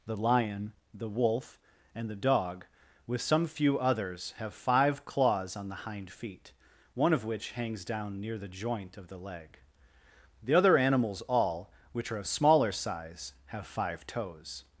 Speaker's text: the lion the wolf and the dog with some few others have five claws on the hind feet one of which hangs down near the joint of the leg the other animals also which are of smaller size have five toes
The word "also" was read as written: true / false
false